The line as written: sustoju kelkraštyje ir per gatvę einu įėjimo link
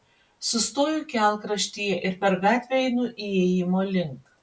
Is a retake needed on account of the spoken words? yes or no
no